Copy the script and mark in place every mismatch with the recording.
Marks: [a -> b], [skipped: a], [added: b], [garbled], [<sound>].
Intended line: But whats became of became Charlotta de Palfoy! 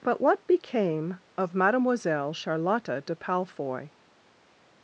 But [whats -> what] became of [became -> mademoiselle] Charlotta de Palfoy!